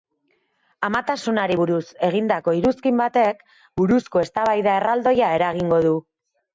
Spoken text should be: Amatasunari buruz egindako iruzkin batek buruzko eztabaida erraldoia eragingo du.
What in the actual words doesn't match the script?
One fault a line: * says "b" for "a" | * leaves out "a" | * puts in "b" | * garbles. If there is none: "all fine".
all fine